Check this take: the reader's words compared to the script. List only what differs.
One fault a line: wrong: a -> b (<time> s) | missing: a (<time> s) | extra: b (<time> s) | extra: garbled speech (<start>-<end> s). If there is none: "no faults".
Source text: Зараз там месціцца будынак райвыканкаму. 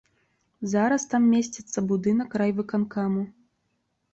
no faults